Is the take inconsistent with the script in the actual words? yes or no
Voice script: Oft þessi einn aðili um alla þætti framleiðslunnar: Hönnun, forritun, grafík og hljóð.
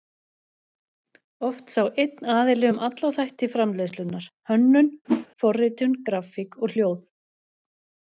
yes